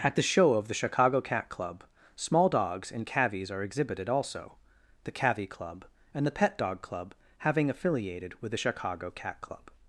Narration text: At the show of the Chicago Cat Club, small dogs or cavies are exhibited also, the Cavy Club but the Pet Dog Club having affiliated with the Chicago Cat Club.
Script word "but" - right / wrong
wrong